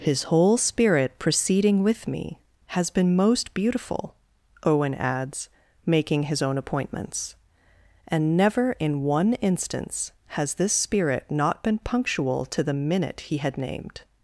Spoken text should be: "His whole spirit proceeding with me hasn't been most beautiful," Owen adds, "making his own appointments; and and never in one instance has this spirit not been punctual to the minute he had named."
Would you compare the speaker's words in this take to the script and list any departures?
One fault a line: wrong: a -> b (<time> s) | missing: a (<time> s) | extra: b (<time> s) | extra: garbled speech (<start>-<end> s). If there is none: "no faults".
wrong: hasn't -> has (2.7 s)
missing: and (8.3 s)